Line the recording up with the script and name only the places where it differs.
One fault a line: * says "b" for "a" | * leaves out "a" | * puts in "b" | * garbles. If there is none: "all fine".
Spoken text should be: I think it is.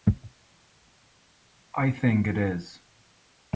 all fine